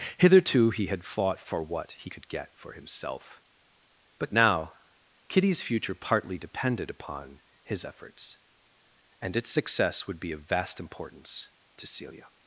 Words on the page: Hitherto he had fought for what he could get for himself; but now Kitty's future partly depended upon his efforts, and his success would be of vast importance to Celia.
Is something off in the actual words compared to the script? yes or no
yes